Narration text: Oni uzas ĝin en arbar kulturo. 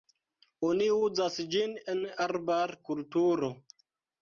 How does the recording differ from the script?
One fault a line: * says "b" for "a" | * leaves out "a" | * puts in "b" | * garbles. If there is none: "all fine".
all fine